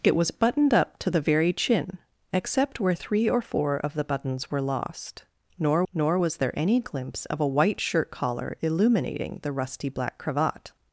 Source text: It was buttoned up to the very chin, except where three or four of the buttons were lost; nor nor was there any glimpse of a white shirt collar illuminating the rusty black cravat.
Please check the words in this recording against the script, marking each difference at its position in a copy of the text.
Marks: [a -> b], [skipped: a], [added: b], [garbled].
It was buttoned up to the very chin, except where three or four of the buttons were lost; nor nor was there any glimpse of a white shirt collar illuminating the rusty black cravat.